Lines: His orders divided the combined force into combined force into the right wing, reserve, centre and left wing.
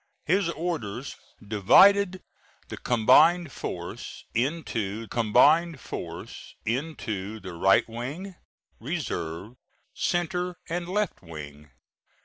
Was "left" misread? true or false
false